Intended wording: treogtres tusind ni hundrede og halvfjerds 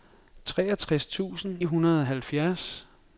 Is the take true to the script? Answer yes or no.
no